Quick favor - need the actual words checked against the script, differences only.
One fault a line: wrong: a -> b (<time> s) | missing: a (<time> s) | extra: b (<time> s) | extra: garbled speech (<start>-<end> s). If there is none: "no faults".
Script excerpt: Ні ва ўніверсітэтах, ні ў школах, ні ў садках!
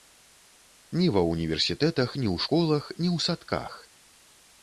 no faults